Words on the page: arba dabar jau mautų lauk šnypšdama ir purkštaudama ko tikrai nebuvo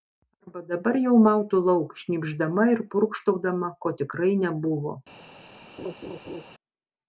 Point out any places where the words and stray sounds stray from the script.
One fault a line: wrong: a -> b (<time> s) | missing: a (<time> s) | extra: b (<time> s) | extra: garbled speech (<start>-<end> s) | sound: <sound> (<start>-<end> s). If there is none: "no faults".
sound: laugh (5.8-6.4 s)